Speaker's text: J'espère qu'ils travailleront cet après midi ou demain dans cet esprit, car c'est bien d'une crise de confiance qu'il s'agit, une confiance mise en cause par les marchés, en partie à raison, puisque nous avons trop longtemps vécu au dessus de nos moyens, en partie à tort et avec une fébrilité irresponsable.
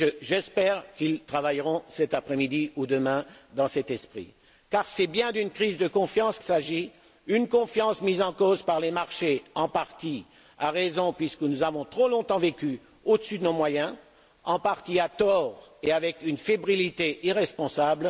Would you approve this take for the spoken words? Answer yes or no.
no